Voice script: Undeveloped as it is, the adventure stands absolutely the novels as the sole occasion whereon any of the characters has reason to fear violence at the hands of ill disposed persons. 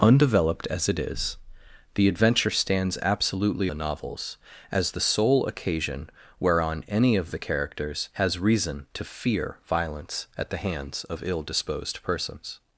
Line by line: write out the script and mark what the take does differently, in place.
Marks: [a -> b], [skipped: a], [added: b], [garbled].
Undeveloped as it is, the adventure stands absolutely the novels as the sole occasion whereon any of the characters has reason to fear violence at the hands of ill disposed persons.